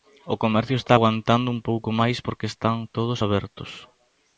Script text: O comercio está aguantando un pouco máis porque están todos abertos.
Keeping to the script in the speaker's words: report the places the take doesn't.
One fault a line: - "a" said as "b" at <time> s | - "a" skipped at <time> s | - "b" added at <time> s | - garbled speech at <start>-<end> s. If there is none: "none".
none